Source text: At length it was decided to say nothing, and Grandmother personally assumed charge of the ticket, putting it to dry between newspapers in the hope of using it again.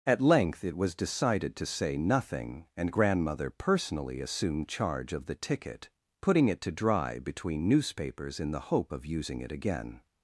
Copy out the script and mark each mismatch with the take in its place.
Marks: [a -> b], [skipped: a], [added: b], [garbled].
At length it was decided to say nothing, and Grandmother personally assumed charge of the ticket, putting it to dry between newspapers in the hope of using it again.